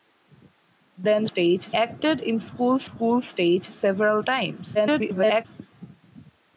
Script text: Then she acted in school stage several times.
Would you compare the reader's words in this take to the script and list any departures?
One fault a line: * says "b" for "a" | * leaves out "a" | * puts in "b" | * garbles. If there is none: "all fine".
* says "stage" for "she"
* puts in "school"
* garbles